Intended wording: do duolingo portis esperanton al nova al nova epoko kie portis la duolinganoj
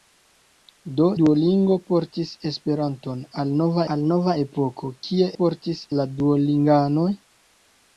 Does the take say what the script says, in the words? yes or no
yes